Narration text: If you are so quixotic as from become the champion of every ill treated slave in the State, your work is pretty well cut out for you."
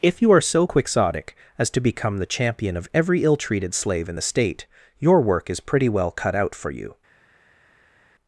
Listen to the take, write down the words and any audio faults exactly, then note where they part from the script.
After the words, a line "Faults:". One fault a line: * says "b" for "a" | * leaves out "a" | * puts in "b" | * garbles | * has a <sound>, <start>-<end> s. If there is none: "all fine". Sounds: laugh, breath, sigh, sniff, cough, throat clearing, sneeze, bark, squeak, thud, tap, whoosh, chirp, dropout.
If you are so quixotic as to become the champion of every ill treated slave in the State, your work is pretty well cut out for you."
Faults:
* says "to" for "from"